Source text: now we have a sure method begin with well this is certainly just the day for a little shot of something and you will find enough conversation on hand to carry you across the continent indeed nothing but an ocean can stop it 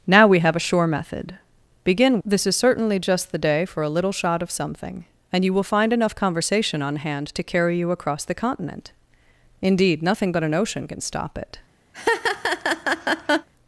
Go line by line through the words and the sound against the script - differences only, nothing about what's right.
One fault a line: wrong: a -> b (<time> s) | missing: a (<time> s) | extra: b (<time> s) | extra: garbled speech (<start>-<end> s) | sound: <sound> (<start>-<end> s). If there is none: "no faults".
missing: with well (2.2 s)
sound: laugh (11.9-13.5 s)